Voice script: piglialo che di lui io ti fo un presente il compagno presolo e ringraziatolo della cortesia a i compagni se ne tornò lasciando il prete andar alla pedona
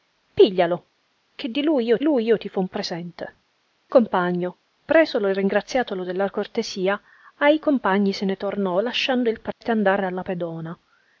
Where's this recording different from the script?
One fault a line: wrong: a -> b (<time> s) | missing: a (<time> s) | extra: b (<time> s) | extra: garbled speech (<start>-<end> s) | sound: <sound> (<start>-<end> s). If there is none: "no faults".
extra: lui io (2.0 s)
missing: il (3.4 s)
sound: dropout (9.5-9.6 s)